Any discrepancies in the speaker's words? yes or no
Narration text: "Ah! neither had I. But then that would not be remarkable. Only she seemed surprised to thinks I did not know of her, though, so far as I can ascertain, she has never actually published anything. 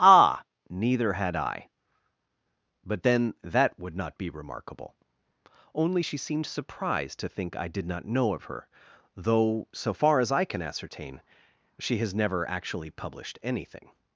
yes